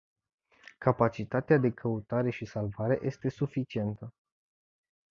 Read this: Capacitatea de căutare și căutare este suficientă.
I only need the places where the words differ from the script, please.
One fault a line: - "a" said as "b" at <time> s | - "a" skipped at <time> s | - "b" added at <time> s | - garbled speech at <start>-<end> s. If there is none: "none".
- "căutare" said as "salvare" at 2.5 s